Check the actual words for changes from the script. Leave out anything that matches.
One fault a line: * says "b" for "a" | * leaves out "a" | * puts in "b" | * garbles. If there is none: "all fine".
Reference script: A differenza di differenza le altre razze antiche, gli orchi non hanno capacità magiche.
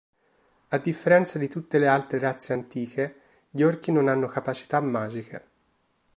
* says "tutte" for "differenza"